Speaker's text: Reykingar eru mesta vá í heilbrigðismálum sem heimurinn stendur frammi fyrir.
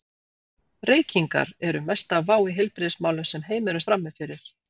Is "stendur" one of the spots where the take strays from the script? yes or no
yes